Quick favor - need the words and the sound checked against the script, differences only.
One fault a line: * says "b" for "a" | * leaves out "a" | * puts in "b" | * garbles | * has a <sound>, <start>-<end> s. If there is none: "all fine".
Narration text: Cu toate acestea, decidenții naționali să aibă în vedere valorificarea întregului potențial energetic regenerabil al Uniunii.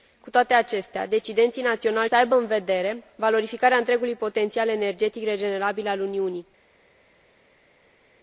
all fine